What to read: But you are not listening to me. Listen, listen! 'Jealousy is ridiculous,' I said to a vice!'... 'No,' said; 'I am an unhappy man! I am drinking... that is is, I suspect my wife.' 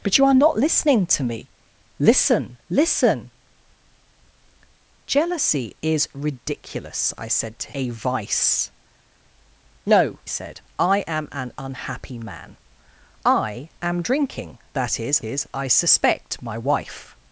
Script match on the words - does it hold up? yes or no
yes